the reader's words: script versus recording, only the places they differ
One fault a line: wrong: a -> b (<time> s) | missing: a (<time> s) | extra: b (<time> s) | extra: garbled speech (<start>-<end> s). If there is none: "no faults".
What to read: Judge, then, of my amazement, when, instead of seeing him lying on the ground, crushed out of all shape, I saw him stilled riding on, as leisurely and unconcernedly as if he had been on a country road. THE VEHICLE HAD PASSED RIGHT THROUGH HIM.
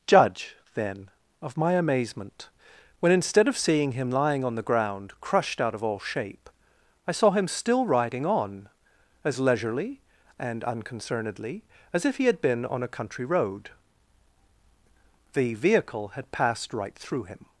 wrong: stilled -> still (7.5 s)